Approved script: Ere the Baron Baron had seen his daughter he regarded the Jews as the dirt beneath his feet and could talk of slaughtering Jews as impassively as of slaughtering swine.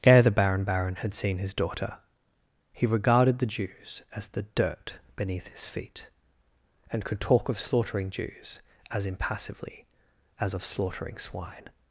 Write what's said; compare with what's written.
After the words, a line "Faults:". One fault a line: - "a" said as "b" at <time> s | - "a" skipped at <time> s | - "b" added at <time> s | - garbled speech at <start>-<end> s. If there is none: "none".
Ere the Baron Baron had seen his daughter he regarded the Jews as the dirt beneath his feet and could talk of slaughtering Jews as impassively as of slaughtering swine.
Faults:
none